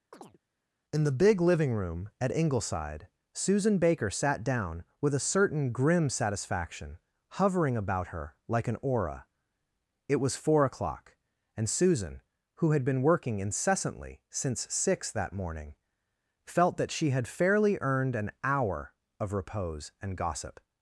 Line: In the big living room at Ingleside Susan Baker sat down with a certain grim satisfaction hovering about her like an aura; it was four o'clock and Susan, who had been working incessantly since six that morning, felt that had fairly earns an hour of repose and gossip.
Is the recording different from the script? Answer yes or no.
yes